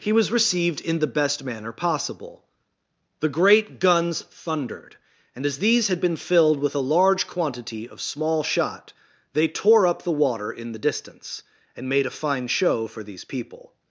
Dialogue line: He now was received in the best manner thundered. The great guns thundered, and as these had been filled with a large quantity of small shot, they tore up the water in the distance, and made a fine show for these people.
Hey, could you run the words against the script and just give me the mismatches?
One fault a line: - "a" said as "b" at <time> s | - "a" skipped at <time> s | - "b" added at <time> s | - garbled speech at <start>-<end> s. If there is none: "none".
- "now" skipped at 0.1 s
- "thundered" said as "possible" at 1.7 s